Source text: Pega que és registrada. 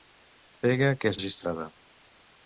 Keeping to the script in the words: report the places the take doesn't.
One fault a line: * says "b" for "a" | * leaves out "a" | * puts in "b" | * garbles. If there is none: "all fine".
all fine